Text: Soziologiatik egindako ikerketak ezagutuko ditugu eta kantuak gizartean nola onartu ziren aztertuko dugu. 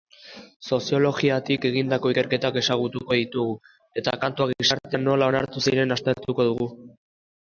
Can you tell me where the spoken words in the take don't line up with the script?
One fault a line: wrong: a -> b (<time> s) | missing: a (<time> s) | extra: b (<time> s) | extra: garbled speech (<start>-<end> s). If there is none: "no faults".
no faults